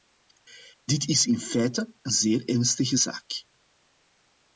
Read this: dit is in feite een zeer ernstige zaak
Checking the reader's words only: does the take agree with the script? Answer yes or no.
yes